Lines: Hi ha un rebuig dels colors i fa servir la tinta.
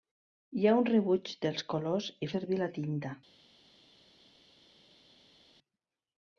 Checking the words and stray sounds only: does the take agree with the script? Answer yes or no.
no